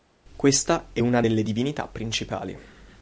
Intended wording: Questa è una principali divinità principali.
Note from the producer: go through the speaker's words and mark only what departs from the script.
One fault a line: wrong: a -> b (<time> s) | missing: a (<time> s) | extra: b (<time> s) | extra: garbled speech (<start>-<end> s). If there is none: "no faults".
wrong: principali -> delle (1.2 s)